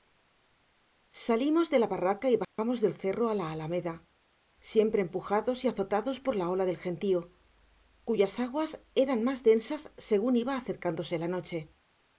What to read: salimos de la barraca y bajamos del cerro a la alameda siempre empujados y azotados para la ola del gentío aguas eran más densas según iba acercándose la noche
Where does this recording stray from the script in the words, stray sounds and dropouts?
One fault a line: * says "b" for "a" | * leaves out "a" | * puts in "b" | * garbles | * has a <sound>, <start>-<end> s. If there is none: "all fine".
* has a dropout, 2.4-2.6 s
* says "por" for "para"
* puts in "cuyas"